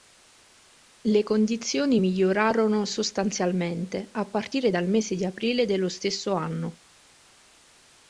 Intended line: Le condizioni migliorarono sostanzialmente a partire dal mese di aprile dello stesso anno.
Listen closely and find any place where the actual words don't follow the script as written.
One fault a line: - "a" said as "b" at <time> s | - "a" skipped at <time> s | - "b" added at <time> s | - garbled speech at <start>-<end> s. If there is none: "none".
none